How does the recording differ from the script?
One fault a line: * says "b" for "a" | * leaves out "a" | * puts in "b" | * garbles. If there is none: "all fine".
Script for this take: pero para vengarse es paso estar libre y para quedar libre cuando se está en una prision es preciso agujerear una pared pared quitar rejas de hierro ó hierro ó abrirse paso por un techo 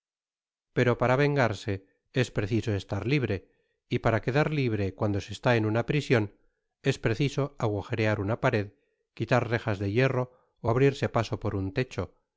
* says "preciso" for "paso"
* leaves out "pared"
* leaves out "hierro ó"